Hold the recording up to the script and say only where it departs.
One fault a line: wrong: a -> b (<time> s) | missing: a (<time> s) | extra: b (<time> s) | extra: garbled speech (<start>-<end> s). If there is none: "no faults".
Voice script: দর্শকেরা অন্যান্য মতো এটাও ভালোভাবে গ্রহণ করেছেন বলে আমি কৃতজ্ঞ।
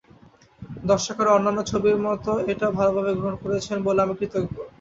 extra: ছবির (1.7 s)